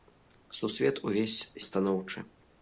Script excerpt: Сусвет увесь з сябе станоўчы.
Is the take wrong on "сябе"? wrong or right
wrong